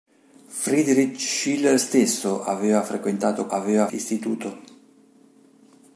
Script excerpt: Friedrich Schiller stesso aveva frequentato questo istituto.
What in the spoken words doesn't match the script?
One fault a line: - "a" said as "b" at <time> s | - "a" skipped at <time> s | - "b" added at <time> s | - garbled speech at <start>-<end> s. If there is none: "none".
- "questo" said as "aveva" at 3.5 s